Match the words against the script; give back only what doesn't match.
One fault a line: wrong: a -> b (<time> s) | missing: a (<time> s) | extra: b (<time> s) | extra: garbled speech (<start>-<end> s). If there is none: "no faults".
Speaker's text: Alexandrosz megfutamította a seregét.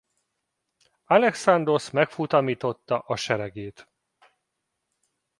no faults